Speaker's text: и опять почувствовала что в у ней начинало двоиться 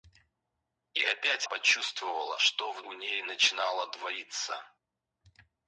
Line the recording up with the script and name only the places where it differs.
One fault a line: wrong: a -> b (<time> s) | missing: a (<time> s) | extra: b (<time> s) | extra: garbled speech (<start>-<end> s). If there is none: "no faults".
no faults